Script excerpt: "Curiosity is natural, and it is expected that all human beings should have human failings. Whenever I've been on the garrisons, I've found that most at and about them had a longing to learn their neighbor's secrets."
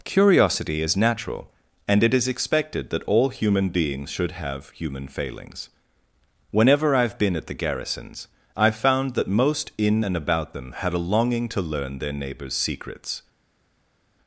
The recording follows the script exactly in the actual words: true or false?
false